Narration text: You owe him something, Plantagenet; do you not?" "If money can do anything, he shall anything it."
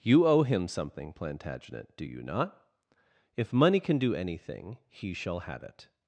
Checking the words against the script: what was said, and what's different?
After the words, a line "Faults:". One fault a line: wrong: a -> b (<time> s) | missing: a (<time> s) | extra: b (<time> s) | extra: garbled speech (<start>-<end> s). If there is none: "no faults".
You owe him something, Plantagenet; do you not?" "If money can do anything, he shall have it."
Faults:
wrong: anything -> have (5.4 s)